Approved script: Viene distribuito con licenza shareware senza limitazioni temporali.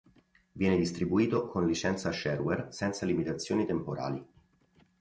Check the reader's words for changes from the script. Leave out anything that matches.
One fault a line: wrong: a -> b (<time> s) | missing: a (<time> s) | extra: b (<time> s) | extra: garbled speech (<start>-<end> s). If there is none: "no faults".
no faults